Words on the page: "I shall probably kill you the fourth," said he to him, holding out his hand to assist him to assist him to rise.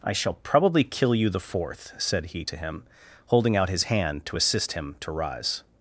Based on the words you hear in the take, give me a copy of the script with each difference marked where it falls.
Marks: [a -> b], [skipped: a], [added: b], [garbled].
"I shall probably kill you the fourth," said he to him, holding out his hand to assist him to [skipped: assist him to] rise.